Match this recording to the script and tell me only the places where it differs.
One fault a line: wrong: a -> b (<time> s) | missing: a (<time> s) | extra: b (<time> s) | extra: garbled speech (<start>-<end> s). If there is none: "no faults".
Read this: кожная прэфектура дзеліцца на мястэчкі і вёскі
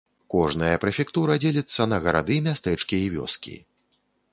extra: гарады (2.1 s)